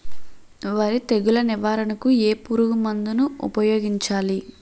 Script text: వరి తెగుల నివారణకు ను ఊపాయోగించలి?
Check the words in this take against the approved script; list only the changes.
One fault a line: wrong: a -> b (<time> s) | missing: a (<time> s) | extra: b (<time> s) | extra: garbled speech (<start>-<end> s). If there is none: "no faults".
extra: ఏ పురుగు మందు (2.2 s)